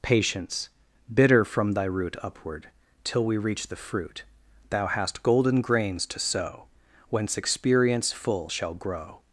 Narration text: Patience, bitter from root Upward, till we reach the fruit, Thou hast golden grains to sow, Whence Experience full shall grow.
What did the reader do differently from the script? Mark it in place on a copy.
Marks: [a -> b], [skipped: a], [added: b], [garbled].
Patience, bitter from [added: thy] root Upward, till we reach the fruit, Thou hast golden grains to sow, Whence Experience full shall grow.